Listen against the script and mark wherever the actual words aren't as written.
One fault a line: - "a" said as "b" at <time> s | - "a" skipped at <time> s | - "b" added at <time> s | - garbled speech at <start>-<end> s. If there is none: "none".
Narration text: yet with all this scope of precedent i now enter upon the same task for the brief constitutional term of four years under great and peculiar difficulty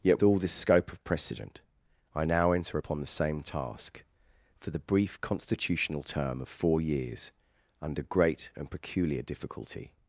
- "with" skipped at 0.2 s